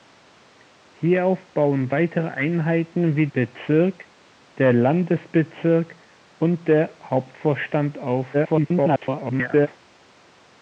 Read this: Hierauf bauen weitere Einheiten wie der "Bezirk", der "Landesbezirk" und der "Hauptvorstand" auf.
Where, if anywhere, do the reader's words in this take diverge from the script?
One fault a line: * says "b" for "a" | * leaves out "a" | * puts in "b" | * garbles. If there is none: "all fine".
* leaves out "der"
* garbles